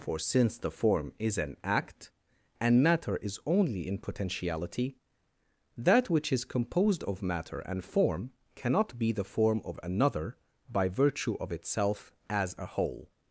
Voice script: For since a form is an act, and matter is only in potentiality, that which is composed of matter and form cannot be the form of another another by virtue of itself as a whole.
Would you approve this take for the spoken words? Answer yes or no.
no